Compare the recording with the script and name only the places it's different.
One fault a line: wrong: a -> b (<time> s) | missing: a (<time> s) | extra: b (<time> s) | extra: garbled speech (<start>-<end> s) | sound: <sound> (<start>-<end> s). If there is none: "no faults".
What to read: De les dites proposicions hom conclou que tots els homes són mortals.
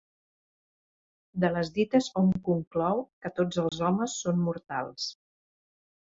missing: proposicions (2.1 s)
sound: dropout (3.7-3.7 s)